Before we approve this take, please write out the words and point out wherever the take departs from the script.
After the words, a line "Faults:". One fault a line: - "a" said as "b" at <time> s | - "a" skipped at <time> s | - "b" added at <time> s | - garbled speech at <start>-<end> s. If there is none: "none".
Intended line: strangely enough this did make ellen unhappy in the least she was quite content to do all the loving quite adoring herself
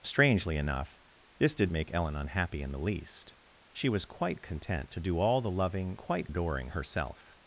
strangely enough this did make ellen unhappy in the least she was quite content to do all the loving quite adoring herself
Faults:
none